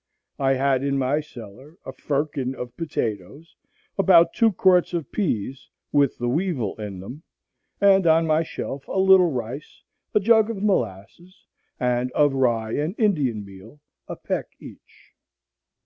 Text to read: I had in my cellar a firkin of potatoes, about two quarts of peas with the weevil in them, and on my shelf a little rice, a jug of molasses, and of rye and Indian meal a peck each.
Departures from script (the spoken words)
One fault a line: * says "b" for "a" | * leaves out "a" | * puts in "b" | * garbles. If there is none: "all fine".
all fine